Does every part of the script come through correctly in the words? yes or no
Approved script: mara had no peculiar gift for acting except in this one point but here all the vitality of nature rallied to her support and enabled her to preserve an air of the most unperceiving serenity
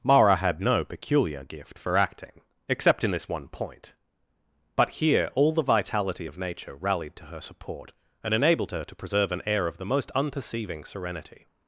yes